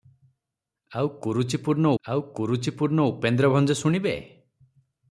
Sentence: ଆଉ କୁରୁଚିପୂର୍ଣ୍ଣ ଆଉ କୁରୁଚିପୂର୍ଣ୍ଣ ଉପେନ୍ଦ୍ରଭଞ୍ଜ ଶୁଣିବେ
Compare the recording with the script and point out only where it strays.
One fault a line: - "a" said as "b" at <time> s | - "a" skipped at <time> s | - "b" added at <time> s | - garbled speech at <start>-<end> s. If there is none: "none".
none